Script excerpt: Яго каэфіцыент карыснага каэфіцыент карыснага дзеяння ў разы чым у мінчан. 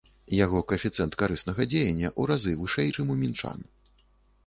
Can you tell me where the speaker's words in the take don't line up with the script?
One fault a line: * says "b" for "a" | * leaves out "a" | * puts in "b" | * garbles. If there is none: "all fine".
* leaves out "каэфіцыент карыснага"
* puts in "вышэй"